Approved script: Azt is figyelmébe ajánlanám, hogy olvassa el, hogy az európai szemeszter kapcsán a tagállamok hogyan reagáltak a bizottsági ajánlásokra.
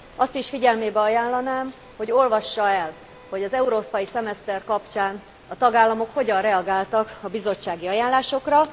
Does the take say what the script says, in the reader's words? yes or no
yes